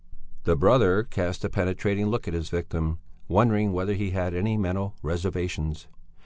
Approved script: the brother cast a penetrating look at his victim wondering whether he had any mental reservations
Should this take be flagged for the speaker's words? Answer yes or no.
no